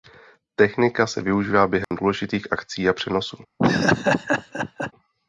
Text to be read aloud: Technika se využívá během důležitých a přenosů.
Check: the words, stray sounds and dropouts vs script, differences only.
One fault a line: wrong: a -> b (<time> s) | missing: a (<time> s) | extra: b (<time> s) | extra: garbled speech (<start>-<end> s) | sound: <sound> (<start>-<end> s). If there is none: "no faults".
sound: dropout (1.8-1.9 s)
extra: akcí (2.5 s)
sound: laugh (3.6-4.9 s)